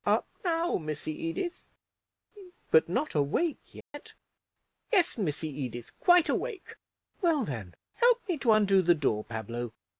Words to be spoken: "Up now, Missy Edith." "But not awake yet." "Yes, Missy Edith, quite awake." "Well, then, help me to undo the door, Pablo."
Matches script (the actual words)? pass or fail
pass